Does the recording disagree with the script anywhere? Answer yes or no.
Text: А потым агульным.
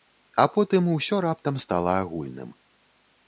yes